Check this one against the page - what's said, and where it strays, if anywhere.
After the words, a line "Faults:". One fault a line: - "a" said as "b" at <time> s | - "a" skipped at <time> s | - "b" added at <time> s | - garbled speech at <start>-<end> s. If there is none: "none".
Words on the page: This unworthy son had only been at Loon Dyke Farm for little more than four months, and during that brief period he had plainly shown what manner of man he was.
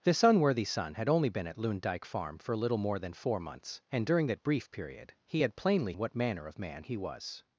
This unworthy son had only been at Loon Dyke Farm for little more than four months, and during that brief period he had plainly what manner of man he was.
Faults:
- "shown" skipped at 5.9 s